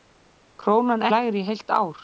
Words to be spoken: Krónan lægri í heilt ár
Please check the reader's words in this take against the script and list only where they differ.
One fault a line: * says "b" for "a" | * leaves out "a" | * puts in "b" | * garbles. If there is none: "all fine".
all fine